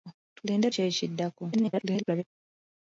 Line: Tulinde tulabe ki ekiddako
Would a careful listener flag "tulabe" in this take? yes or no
yes